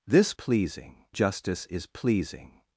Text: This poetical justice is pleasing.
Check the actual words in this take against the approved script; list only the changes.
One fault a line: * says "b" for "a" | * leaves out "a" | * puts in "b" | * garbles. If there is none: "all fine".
* says "pleasing" for "poetical"